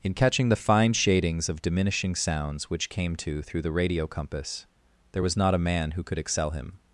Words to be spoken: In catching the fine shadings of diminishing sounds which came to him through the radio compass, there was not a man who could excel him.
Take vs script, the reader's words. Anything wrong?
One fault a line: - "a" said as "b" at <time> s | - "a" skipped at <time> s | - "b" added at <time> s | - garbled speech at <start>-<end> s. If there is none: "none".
- "him" skipped at 3.4 s